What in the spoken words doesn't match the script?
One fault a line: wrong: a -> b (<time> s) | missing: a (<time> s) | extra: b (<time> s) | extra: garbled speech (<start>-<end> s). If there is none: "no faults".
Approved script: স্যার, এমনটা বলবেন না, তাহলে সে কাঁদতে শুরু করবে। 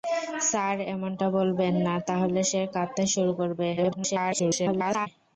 extra: garbled speech (3.8-5.1 s)